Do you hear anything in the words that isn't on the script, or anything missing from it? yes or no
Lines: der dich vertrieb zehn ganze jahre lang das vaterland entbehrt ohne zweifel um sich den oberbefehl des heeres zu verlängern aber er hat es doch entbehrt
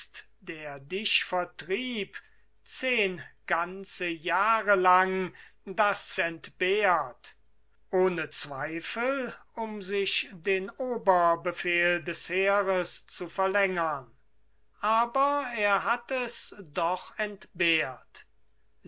yes